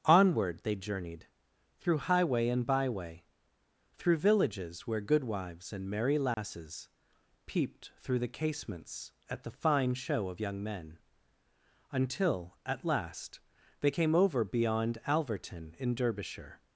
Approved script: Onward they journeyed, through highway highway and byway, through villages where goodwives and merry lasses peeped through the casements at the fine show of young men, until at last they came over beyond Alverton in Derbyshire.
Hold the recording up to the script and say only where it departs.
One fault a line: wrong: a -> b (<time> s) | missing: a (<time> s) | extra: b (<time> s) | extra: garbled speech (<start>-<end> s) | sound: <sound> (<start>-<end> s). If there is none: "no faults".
missing: highway (2.5 s)
sound: dropout (6.3-6.4 s)